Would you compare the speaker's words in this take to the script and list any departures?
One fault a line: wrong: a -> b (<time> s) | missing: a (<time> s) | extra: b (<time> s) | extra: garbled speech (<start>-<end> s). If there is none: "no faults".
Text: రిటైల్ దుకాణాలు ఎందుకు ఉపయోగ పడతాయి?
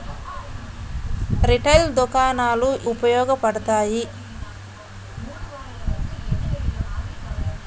missing: ఎందుకు (2.7 s)